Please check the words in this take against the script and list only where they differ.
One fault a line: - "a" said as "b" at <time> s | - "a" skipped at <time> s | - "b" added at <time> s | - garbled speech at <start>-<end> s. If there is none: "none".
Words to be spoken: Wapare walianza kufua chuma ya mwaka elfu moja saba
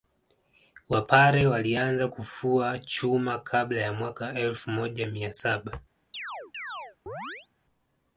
- "kabla" added at 3.4 s
- "mia" added at 5.1 s